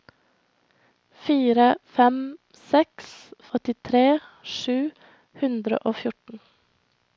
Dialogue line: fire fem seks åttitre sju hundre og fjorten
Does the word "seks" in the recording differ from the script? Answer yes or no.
no